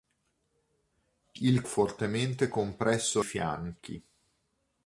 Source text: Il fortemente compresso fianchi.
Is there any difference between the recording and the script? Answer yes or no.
no